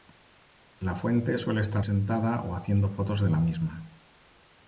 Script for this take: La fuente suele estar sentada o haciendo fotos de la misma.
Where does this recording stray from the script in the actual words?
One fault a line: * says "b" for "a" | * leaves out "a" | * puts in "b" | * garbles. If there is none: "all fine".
all fine